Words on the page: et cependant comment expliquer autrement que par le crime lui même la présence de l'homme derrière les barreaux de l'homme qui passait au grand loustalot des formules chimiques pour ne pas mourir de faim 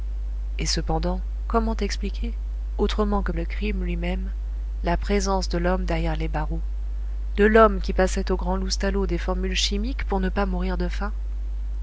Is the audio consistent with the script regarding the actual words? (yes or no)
no